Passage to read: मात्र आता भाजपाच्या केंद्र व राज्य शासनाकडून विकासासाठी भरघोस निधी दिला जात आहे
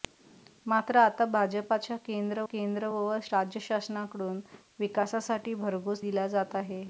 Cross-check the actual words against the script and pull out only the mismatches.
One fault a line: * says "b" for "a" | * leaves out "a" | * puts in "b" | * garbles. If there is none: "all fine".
* puts in "केंद्र"
* leaves out "निधी"